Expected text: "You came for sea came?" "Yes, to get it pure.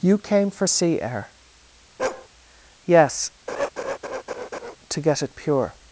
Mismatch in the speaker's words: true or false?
true